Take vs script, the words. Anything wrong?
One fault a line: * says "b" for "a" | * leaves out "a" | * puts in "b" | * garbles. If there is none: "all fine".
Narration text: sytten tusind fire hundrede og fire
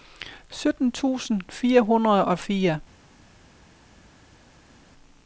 all fine